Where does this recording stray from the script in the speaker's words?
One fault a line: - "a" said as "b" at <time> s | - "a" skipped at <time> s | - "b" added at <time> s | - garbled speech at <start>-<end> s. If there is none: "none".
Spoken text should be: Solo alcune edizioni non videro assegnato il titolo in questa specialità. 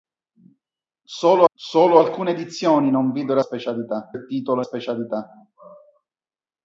- "solo" added at 1.5 s
- "assegnato" said as "specialità" at 3.4 s
- "in questa" skipped at 4.6 s